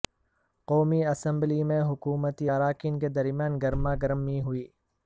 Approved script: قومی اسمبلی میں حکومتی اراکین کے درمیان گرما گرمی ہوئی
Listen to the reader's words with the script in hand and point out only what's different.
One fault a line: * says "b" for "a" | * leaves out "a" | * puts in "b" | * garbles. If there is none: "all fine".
all fine